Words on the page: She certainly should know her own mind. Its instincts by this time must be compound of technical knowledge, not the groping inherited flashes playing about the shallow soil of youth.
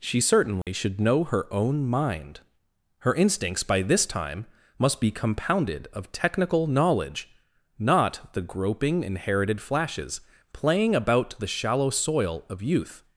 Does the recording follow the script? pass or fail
fail